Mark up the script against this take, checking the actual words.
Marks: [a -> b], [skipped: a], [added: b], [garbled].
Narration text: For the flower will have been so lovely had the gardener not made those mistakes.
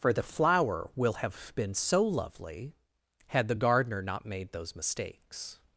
For the flower will have been so lovely had the gardener not made those mistakes.